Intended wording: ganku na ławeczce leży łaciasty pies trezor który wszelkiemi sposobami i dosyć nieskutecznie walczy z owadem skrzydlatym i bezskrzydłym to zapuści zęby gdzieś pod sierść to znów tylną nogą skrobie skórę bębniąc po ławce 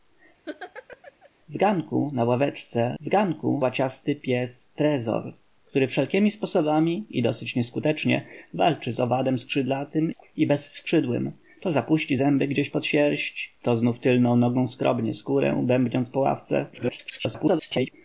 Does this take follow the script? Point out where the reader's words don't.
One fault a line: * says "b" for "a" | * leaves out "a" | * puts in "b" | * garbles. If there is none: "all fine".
* says "ganku" for "leży"
* garbles